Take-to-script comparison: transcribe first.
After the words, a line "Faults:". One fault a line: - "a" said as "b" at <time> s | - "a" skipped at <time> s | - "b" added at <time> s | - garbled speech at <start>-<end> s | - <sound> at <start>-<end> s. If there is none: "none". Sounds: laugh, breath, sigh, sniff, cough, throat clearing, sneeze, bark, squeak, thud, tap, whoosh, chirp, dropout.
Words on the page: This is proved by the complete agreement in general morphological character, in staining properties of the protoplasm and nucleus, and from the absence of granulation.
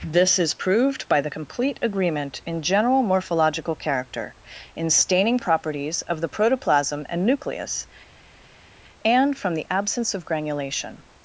This is proved by the complete agreement in general morphological character, in staining properties of the protoplasm and nucleus, and from the absence of granulation.
Faults:
none